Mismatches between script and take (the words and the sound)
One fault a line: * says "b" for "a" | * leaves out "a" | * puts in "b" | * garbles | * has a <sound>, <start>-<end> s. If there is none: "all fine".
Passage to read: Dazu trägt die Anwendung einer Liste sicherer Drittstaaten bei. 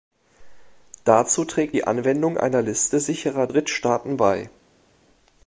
all fine